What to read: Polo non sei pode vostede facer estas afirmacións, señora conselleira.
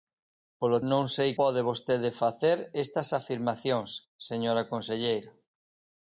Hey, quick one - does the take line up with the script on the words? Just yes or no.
yes